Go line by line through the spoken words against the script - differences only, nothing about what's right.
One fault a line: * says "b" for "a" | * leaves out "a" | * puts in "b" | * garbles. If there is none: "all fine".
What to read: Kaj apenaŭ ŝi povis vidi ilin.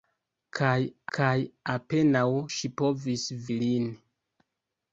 * puts in "kaj"
* leaves out "vidi"